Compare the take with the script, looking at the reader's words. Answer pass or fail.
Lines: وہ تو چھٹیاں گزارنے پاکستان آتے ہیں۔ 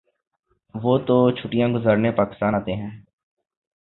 pass